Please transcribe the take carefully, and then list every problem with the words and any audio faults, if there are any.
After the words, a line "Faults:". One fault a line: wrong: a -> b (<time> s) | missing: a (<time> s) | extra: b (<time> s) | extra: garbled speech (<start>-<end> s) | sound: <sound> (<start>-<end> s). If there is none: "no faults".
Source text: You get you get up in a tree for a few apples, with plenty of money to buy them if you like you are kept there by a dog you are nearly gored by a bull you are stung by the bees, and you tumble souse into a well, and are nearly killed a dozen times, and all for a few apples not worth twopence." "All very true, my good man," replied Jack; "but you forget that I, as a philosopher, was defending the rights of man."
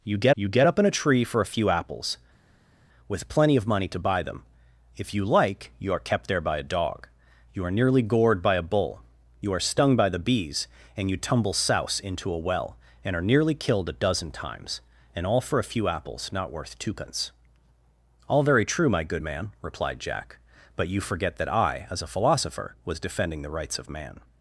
You get you get up in a tree for a few apples, with plenty of money to buy them if you like you are kept there by a dog you are nearly gored by a bull you are stung by the bees, and you tumble souse into a well, and are nearly killed a dozen times, and all for a few apples not worth twopence." "All very true, my good man," replied Jack; "but you forget that I, as a philosopher, was defending the rights of man."
Faults:
no faults